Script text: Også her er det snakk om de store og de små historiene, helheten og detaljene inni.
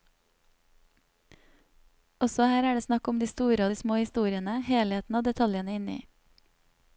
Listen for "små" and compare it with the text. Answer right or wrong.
right